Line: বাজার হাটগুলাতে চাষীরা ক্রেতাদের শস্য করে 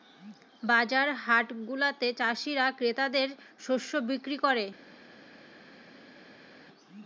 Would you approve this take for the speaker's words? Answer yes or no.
no